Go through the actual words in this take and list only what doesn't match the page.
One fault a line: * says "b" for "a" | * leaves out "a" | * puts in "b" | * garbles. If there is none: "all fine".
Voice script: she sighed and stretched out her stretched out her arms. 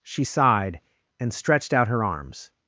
* leaves out "stretched out her"